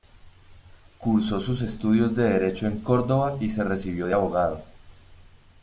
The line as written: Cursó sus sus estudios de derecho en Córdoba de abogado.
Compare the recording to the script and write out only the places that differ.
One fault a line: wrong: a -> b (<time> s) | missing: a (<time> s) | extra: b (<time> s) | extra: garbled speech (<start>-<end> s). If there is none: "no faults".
missing: sus (1.6 s)
extra: y se recibió (3.4 s)